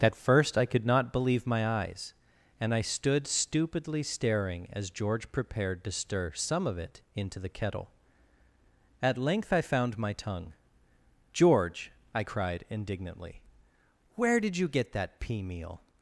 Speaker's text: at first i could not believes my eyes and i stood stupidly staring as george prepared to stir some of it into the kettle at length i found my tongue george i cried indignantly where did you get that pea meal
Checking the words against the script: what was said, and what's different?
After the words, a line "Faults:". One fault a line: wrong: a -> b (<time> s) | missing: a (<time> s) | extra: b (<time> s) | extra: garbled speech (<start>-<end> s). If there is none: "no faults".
at first i could not believe my eyes and i stood stupidly staring as george prepared to stir some of it into the kettle at length i found my tongue george i cried indignantly where did you get that pea meal
Faults:
wrong: believes -> believe (1.1 s)